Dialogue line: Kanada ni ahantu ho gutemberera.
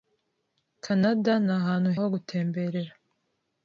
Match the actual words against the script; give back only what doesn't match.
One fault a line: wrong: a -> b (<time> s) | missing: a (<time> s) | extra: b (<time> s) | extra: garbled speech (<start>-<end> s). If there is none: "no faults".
no faults